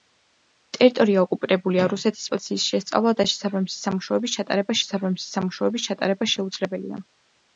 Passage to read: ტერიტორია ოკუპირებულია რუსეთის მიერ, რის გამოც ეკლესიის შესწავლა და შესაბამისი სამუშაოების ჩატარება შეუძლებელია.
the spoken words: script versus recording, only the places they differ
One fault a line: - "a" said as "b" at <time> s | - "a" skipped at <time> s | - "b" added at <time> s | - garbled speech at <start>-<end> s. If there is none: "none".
- "მიერ რის გამოც ეკლესიის შესწავლა და" said as "ეკლესიის შესწავლა და შესაბამისი სამუშაოების ჩატარება" at 2.3 s